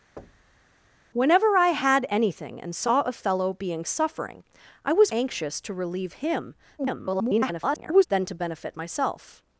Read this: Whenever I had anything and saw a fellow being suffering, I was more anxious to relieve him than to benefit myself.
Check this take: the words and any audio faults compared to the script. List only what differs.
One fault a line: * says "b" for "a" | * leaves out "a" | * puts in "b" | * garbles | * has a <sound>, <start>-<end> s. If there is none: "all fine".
* has a thud, 0.2-0.7 s
* leaves out "more"
* garbles